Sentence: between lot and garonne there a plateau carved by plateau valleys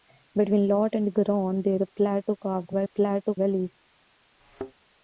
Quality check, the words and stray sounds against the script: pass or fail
fail